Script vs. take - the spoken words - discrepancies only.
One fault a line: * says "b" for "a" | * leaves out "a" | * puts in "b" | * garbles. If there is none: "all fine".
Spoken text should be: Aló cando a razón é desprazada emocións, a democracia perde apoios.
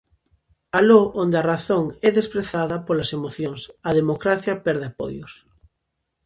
* says "onde" for "cando"
* puts in "polas"